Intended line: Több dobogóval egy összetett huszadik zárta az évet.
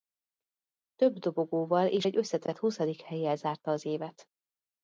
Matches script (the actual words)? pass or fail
fail